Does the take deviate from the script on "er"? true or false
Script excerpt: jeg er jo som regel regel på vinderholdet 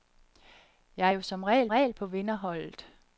false